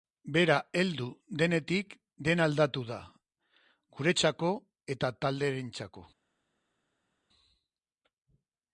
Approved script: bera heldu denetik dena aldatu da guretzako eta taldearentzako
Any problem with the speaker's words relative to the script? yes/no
no